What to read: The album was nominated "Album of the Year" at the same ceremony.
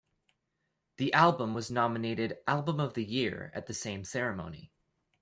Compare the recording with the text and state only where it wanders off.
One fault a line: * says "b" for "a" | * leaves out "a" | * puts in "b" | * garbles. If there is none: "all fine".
all fine